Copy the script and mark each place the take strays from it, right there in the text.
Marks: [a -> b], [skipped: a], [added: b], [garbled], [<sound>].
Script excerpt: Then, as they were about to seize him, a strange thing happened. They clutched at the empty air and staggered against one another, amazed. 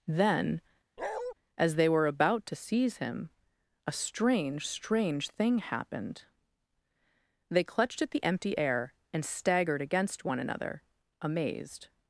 Then, [bark] as they were about to seize him, a strange [added: strange] thing happened. They clutched at the empty air and staggered against one another, amazed.